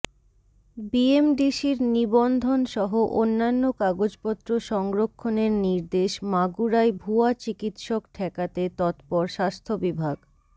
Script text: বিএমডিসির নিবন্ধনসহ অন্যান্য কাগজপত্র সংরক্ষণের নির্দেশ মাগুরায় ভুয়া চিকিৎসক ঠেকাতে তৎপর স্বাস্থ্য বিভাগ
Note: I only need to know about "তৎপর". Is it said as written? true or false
true